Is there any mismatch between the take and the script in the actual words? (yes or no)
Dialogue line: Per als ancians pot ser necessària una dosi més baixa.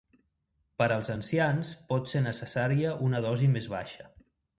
no